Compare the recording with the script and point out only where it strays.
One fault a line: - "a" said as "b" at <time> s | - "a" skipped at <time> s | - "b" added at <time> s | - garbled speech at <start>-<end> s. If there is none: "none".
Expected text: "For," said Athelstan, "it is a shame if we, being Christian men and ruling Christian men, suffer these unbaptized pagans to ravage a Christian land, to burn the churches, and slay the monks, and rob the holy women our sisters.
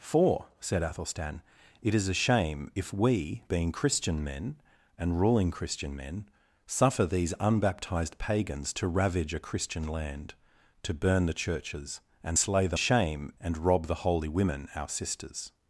- "monks" said as "shame" at 12.8 s